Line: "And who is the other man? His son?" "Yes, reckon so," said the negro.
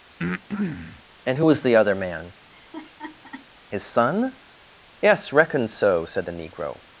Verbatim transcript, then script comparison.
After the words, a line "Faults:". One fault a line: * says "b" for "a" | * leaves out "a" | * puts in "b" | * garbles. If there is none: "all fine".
"And who was the other man? His son?" "Yes, reckon so," said the negro.
Faults:
* says "was" for "is"